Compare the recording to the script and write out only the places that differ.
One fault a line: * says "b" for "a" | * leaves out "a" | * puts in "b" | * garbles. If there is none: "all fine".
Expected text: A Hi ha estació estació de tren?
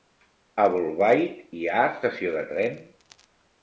* puts in "Bolbait"
* leaves out "estació"